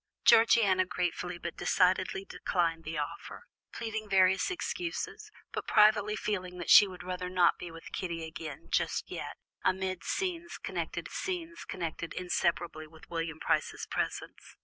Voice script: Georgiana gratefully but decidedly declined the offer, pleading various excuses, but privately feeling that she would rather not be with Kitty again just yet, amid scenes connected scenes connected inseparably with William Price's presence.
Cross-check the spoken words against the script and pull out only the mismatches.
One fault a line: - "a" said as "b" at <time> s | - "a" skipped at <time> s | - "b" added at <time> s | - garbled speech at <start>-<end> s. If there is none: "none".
none